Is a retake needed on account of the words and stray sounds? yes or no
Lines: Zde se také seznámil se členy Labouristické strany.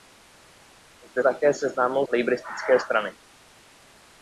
yes